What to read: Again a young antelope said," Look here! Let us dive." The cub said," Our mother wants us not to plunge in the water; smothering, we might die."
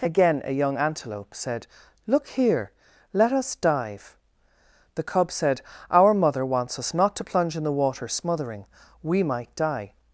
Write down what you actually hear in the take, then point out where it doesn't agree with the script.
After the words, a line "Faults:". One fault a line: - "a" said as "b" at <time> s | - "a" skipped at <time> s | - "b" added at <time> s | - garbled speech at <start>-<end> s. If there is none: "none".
Again a young antelope said," Look here! Let us dive." The cub said," Our mother wants us not to plunge in the water; smothering, we might die."
Faults:
none